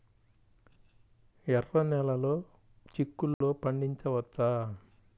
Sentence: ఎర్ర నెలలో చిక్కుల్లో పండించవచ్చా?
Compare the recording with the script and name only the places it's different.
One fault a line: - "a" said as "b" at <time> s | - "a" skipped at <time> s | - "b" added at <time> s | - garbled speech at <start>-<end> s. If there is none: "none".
none